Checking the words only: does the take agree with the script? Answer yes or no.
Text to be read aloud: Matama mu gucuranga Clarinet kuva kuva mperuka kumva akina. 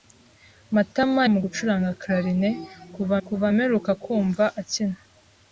yes